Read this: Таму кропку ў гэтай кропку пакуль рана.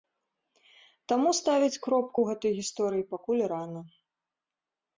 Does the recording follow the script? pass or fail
fail